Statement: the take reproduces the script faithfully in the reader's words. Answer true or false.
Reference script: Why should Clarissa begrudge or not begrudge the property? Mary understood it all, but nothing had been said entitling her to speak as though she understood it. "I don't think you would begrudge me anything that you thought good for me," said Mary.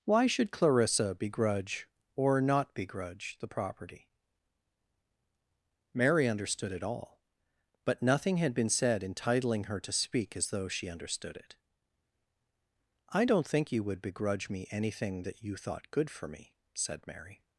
true